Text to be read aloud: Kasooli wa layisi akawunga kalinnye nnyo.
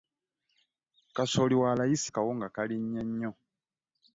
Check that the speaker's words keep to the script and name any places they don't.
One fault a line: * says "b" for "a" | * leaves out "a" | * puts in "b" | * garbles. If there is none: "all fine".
all fine